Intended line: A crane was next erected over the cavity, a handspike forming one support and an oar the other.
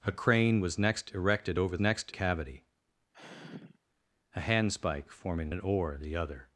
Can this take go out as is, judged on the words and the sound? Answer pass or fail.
fail